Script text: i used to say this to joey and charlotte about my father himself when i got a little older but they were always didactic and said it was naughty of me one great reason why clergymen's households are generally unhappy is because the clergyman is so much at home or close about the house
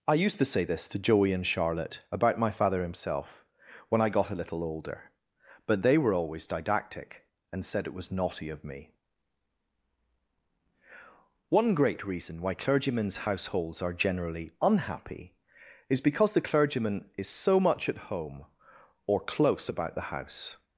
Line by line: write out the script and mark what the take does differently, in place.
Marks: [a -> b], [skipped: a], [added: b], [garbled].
i used to say this to joey and charlotte about my father himself when i got a little older but they were always didactic and said it was naughty of me one great reason why clergymen's households are generally unhappy is because the clergyman is so much at home or close about the house